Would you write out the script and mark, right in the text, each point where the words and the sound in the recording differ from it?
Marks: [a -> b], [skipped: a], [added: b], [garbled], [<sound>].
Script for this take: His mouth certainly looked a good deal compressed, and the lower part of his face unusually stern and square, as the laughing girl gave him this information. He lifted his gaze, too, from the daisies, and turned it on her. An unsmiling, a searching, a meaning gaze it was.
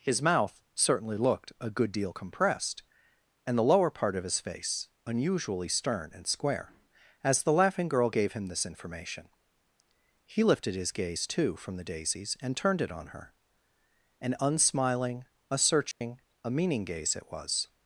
His mouth certainly looked a good deal compressed, and the lower part of his face unusually stern and square, as the laughing girl gave him this information. He lifted his gaze, too, from the daisies, and turned it on her. An unsmiling, a searching, [dropout] a meaning gaze it was.